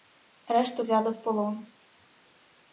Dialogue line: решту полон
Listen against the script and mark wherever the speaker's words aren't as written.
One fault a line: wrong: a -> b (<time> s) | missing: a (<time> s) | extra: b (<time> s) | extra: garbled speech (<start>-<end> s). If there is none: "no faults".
extra: взяли в (0.8 s)